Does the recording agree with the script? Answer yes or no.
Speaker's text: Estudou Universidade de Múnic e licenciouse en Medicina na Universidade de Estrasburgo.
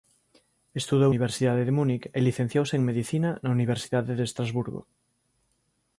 yes